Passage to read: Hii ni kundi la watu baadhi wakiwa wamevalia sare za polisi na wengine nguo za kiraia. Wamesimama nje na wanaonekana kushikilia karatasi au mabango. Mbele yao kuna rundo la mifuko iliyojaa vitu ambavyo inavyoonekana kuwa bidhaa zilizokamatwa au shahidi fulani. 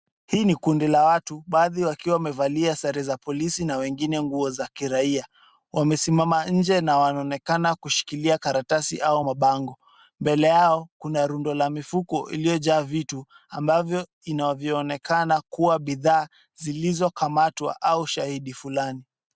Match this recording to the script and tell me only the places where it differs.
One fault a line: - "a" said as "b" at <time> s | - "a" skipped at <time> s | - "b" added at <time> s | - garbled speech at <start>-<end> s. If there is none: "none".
none